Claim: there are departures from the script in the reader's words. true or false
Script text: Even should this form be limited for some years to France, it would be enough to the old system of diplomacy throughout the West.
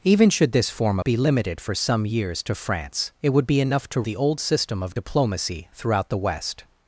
false